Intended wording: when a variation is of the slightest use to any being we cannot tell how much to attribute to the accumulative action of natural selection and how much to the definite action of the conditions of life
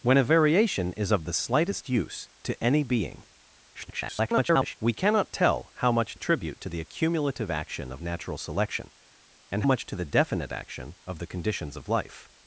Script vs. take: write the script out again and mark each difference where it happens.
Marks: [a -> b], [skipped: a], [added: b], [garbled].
when a variation is of the slightest use to any being [garbled] we cannot tell how much [skipped: to] attribute to the accumulative action of natural selection and [skipped: how] much to the definite action of the conditions of life